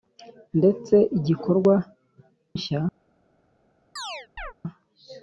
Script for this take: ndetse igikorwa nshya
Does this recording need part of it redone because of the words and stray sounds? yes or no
yes